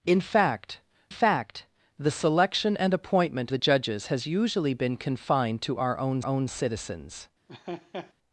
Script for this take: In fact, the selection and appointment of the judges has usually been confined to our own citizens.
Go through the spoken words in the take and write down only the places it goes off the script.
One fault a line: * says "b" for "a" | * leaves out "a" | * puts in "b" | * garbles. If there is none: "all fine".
* puts in "fact"
* leaves out "of"
* puts in "own"